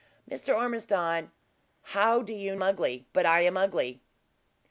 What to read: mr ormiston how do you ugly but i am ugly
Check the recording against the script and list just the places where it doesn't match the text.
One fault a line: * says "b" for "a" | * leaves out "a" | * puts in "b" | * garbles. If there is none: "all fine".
all fine